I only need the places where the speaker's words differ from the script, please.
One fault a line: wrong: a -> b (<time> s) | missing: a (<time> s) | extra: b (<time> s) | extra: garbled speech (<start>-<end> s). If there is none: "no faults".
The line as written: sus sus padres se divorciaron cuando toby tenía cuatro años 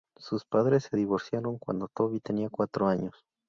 missing: sus (0.5 s)